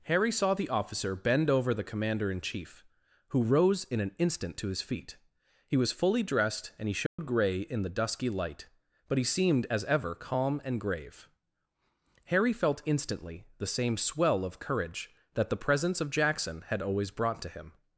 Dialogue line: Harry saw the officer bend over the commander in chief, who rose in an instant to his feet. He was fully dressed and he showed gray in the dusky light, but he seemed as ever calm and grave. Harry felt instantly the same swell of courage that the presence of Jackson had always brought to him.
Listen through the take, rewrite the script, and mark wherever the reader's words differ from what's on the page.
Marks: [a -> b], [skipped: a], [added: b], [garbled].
Harry saw the officer bend over the commander in chief, who rose in an instant to his feet. He was fully dressed and he showed gray in the dusky light, but he seemed as ever calm and grave. Harry felt instantly the same swell of courage that the presence of Jackson had always brought to him.